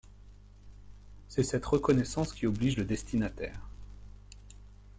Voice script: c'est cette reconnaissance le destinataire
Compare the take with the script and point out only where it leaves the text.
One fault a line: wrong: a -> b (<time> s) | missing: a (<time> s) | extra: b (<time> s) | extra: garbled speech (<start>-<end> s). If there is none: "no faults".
extra: qui oblige (2.3 s)